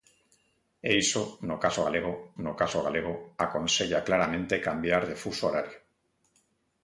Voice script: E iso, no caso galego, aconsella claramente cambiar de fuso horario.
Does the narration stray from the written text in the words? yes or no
yes